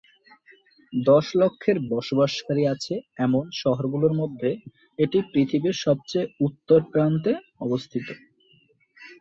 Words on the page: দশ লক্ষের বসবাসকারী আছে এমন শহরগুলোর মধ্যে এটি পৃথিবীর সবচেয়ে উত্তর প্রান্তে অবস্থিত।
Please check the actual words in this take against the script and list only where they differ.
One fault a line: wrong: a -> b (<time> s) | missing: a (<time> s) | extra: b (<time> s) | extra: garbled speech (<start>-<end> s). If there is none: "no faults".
no faults